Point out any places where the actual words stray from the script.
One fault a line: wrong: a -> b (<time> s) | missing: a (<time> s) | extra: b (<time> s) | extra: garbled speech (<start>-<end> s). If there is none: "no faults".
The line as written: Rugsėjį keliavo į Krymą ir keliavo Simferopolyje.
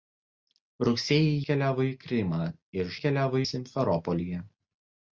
no faults